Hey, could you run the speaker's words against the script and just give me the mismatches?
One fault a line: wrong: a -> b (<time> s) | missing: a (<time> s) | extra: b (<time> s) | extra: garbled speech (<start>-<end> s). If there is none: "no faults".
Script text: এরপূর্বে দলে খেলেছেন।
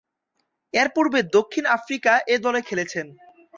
extra: দক্ষিণ আফ্রিকা এ (1.4 s)